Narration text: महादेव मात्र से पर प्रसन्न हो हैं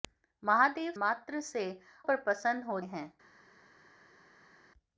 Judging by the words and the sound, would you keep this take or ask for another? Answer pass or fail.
pass